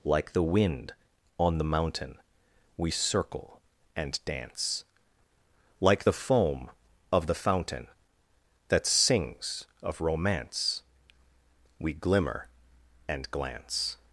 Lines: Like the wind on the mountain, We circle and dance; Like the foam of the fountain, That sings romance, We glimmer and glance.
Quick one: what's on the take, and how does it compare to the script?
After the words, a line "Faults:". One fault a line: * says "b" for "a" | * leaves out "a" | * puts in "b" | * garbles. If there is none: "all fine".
Like the wind on the mountain, We circle and dance; Like the foam of the fountain, That sings of romance, We glimmer and glance.
Faults:
* puts in "of"